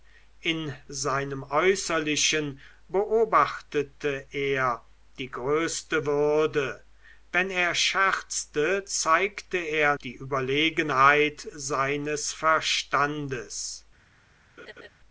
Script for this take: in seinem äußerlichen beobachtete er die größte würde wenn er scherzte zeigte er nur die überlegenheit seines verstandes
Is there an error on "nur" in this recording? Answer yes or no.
yes